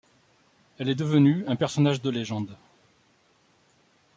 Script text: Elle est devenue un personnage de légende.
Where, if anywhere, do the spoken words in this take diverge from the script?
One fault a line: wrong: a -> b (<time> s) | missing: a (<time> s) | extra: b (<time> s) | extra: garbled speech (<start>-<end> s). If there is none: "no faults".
no faults